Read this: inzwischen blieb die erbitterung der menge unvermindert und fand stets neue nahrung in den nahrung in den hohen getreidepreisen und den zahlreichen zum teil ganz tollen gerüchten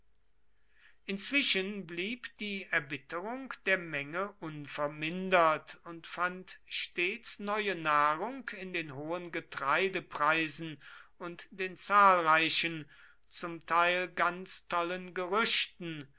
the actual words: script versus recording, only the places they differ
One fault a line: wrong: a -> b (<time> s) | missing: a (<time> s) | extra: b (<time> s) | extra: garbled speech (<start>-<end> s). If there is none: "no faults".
missing: nahrung in den (8.9 s)